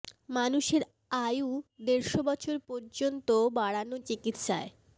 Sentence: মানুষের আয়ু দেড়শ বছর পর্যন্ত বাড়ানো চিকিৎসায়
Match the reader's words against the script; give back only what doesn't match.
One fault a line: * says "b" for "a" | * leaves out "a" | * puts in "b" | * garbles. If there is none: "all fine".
all fine